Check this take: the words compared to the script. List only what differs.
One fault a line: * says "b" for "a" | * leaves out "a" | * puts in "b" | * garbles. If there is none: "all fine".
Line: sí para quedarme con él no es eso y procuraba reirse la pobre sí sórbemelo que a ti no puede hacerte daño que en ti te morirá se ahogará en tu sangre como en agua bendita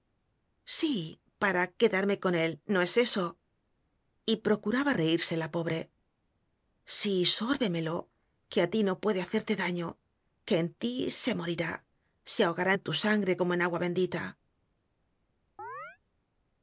* says "se" for "te"